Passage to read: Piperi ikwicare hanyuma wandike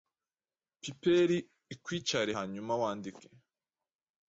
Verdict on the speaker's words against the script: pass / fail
pass